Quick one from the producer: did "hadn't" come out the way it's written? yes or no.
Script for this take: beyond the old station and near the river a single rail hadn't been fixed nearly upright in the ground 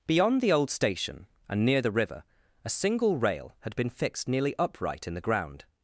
no